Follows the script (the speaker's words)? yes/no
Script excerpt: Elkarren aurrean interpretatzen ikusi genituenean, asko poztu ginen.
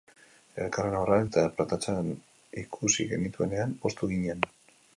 no